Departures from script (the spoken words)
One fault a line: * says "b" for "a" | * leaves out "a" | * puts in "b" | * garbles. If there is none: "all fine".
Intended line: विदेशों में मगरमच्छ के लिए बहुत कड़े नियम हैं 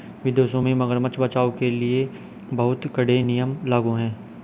* puts in "बचाओ"
* puts in "लागू"